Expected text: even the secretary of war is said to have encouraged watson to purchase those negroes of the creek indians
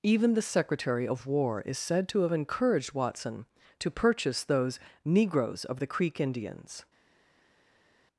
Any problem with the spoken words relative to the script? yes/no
no